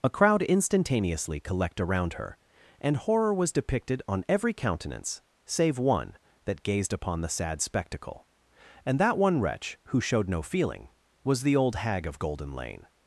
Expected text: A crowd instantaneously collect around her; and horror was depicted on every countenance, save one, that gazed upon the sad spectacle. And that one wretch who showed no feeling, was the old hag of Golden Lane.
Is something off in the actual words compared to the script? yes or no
no